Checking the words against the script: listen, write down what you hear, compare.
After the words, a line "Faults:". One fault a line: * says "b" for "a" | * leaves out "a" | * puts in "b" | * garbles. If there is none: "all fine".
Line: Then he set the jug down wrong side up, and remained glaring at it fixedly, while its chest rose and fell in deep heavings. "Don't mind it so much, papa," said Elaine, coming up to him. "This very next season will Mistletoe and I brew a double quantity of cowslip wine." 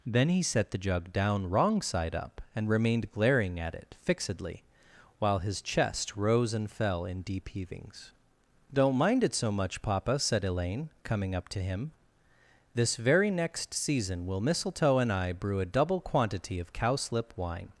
Then he set the jug down wrong side up, and remained glaring at it fixedly, while his chest rose and fell in deep heavings. "Don't mind it so much, papa," said Elaine, coming up to him. "This very next season will Mistletoe and I brew a double quantity of cowslip wine."
Faults:
* says "his" for "its"